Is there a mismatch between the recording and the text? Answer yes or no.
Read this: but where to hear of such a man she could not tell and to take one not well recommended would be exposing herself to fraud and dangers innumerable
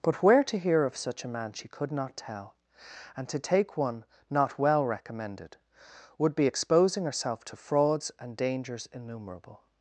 yes